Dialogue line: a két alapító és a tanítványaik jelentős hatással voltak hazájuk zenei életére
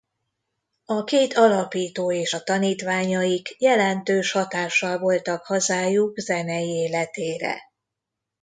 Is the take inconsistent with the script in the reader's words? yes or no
no